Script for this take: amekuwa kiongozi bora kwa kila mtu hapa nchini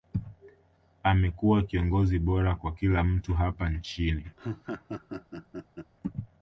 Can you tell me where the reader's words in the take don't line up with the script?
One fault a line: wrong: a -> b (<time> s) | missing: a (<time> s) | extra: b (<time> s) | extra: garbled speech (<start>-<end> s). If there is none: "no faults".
no faults